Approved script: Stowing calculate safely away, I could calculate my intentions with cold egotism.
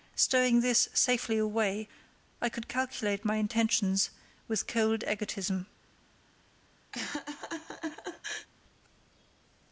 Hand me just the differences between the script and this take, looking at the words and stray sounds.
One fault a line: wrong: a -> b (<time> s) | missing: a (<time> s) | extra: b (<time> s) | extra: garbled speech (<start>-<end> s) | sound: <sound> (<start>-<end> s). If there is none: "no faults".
wrong: calculate -> this (0.6 s)
sound: laugh (6.9-8.5 s)